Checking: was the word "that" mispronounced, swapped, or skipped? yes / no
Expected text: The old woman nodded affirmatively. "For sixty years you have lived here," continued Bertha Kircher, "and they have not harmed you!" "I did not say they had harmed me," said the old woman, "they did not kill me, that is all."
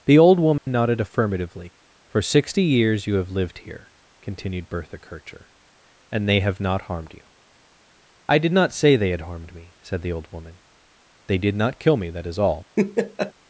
no